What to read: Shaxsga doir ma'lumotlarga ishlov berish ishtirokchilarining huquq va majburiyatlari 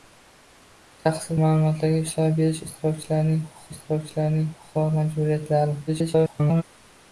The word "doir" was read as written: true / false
false